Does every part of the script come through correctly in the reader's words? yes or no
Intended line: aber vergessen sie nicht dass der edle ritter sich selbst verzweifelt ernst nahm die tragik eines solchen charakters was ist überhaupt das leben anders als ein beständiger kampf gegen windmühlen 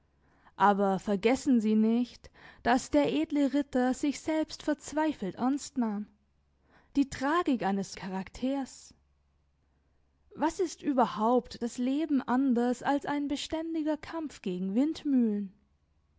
no